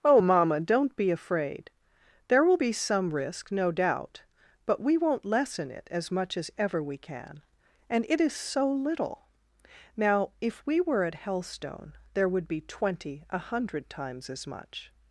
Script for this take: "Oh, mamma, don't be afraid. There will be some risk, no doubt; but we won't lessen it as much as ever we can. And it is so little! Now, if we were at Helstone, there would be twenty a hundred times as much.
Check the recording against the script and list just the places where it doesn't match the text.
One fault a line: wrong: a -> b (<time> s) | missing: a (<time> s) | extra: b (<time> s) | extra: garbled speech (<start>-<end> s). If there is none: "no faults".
no faults